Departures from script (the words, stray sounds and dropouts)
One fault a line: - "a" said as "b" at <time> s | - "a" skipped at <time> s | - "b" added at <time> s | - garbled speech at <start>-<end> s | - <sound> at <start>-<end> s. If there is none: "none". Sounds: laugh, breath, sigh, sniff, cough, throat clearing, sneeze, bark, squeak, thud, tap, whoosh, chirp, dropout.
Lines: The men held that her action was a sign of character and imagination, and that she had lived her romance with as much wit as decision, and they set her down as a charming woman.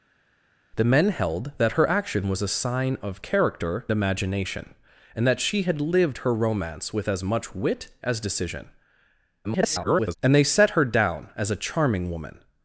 - "and" skipped at 3.9 s
- garbled speech at 9.4-10.2 s